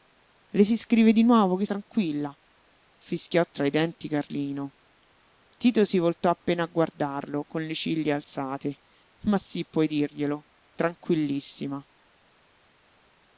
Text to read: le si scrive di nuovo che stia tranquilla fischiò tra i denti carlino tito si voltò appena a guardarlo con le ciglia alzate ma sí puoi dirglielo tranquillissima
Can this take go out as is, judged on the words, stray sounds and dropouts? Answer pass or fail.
fail